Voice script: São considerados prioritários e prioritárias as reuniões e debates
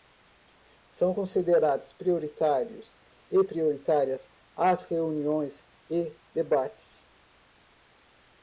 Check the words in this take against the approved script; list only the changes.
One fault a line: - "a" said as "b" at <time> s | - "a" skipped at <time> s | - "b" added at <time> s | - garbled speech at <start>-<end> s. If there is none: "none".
none